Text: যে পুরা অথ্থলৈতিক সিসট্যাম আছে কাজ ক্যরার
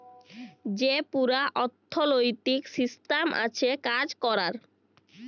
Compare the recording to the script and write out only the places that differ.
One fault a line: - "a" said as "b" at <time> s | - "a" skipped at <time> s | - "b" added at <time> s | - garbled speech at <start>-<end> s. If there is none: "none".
none